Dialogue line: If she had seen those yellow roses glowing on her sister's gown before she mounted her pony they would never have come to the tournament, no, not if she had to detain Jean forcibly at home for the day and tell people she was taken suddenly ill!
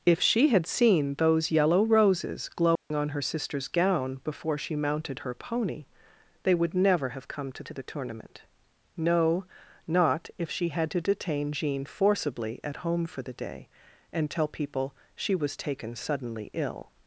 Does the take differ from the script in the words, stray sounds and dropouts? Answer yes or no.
yes